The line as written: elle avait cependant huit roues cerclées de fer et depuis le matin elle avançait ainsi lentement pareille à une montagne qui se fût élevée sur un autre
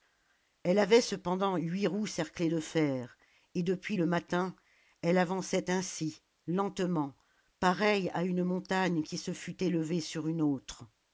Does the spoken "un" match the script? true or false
false